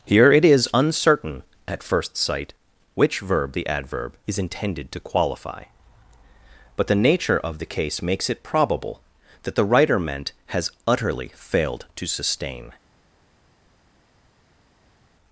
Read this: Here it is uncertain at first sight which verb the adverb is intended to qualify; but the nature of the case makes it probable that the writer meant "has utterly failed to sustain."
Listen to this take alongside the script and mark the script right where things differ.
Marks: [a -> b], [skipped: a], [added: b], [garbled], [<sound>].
Here it is uncertain at first sight which verb the adverb is intended to qualify; but the nature of the case makes it probable that the writer meant "has utterly failed to sustain."